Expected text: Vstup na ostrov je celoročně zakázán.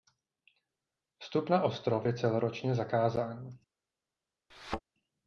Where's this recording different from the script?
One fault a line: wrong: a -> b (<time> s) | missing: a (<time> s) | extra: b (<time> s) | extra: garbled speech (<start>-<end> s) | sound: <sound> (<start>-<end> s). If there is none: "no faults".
sound: thud (4.5-4.8 s)